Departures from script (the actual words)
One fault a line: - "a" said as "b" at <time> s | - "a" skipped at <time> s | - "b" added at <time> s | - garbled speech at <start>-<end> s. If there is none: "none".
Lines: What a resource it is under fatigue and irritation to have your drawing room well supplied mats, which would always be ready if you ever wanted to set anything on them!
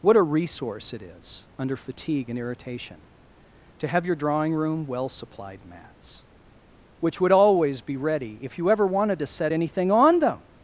none